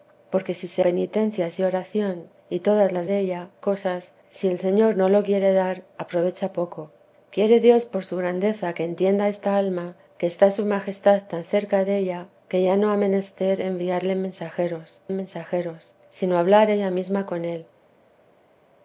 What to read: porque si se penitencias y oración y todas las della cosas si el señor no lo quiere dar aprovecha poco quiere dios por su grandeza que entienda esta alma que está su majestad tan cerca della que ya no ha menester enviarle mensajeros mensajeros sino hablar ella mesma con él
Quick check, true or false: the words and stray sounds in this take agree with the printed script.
true